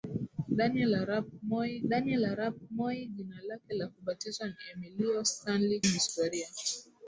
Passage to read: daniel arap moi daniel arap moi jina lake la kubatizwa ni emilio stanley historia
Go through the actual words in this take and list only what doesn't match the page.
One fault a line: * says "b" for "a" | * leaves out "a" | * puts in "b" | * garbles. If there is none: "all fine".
all fine